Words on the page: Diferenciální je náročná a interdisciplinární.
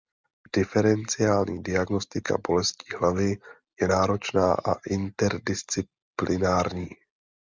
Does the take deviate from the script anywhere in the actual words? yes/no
yes